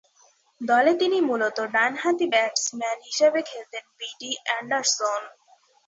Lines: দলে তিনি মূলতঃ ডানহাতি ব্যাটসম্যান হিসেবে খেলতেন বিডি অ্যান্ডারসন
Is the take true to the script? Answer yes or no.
yes